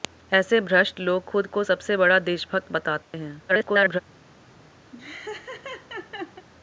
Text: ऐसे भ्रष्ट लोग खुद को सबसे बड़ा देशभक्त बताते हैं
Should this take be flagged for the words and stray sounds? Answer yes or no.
yes